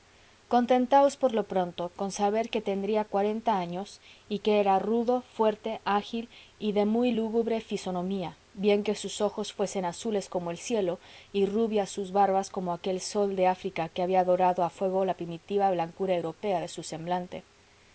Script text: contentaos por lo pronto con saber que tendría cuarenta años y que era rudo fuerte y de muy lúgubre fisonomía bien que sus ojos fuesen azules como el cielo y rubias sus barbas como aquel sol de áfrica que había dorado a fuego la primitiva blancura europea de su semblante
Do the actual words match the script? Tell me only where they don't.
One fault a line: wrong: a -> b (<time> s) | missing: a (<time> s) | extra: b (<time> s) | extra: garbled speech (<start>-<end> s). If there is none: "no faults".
extra: ágil (5.8 s)